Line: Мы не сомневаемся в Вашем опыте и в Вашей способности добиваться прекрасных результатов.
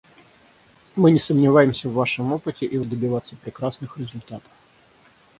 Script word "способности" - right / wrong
wrong